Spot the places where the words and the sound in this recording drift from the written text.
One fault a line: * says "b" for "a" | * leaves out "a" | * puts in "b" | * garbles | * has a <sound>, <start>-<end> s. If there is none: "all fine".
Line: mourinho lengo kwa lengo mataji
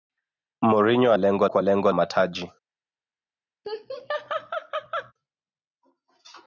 * has a laugh, 3.6-5.1 s